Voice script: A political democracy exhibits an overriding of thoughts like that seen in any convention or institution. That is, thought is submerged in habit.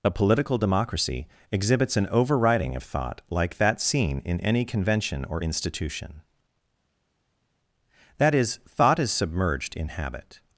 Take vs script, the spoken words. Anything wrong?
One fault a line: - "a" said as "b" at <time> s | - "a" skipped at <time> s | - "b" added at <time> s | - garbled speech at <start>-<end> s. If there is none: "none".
- "thoughts" said as "thought" at 2.8 s